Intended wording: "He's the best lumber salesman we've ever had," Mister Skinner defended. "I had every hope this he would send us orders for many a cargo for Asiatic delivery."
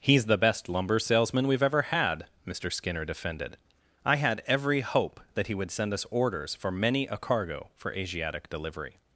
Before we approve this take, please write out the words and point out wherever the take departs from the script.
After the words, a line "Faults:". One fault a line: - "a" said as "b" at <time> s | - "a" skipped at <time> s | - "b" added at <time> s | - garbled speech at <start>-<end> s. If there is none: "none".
"He's the best lumber salesman we've ever had," Mister Skinner defended. "I had every hope that he would send us orders for many a cargo for Asiatic delivery."
Faults:
- "this" said as "that" at 5.3 s